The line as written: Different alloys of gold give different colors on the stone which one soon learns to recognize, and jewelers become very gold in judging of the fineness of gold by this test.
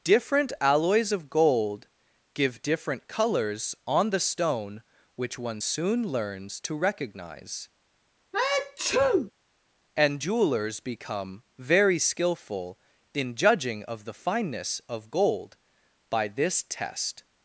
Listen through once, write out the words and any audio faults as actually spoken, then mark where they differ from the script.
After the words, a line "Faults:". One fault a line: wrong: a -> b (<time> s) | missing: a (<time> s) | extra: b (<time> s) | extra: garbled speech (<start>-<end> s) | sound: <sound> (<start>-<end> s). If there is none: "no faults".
Different alloys of gold give different colors on the stone which one soon learns to recognize, and jewelers become very skillful in judging of the fineness of gold by this test.
Faults:
sound: sneeze (8.3-9.3 s)
wrong: gold -> skillful (12.0 s)